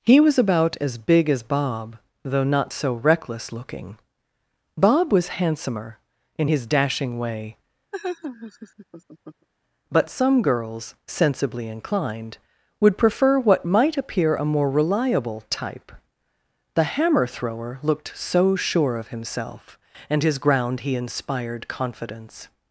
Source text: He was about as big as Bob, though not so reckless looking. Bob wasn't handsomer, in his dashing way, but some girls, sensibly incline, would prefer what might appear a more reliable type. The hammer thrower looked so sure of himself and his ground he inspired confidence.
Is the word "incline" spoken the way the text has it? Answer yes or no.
no